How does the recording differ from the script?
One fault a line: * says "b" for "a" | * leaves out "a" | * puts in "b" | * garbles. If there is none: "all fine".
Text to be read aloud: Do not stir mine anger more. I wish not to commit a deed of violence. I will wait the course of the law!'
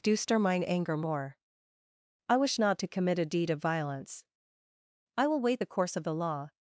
* leaves out "not"